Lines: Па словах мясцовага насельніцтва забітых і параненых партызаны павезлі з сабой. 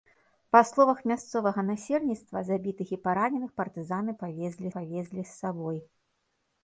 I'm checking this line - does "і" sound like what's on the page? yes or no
yes